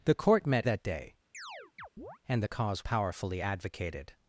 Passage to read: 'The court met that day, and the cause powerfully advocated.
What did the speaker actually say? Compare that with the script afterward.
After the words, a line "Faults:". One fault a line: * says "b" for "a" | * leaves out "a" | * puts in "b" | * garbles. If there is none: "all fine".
'The court met that day, and the cause powerfully advocated.
Faults:
all fine